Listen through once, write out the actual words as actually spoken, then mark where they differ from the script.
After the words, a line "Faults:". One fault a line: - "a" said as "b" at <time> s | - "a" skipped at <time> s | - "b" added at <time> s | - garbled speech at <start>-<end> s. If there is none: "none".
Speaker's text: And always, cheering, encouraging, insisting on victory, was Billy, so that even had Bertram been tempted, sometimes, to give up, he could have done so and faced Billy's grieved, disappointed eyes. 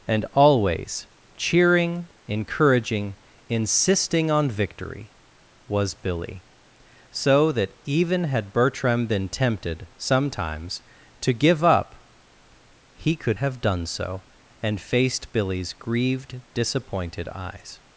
And always, cheering, encouraging, insisting on victory, was Billy, so that even had Bertram been tempted, sometimes, to give up, he could have done so and faced Billy's grieved, disappointed eyes.
Faults:
none